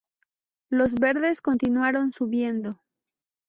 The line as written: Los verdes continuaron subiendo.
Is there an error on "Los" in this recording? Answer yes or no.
no